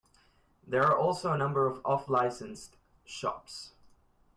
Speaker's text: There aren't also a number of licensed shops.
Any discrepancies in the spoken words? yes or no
yes